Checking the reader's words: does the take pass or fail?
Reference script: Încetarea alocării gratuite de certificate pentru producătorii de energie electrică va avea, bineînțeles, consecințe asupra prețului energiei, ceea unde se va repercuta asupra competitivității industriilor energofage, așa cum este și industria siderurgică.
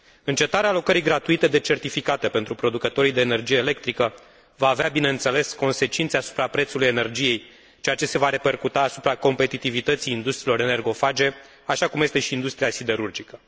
fail